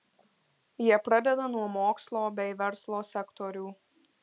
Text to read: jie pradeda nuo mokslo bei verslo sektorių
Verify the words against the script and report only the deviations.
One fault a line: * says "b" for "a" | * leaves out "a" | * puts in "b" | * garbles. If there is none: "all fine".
all fine